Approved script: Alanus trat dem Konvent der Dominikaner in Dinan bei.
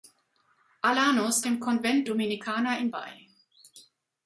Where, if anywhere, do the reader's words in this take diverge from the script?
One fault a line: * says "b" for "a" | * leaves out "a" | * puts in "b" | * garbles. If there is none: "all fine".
* leaves out "trat"
* leaves out "der"
* leaves out "Dinan"